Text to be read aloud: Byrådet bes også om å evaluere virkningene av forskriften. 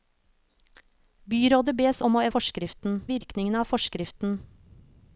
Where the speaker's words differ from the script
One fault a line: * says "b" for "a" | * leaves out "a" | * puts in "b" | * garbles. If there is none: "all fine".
* leaves out "også"
* says "forskriften" for "evaluere"